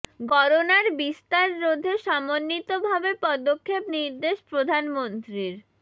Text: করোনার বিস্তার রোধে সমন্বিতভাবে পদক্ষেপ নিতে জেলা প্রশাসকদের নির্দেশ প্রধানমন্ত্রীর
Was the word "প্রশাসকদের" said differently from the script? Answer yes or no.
yes